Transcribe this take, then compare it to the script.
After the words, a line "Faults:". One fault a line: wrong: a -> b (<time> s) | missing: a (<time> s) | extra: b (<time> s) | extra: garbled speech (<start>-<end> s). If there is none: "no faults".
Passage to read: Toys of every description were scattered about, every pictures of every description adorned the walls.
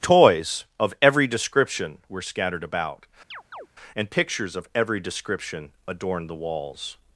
Toys of every description were scattered about, and pictures of every description adorned the walls.
Faults:
wrong: every -> and (4.0 s)